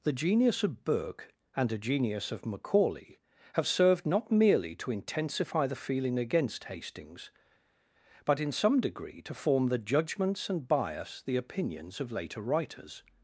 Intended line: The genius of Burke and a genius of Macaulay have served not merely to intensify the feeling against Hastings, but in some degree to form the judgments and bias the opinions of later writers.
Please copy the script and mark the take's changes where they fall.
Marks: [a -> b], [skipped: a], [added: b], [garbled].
The genius of Burke and a genius of Macaulay have served not merely to intensify the feeling against Hastings, but in some degree to form the judgments and bias the opinions of later writers.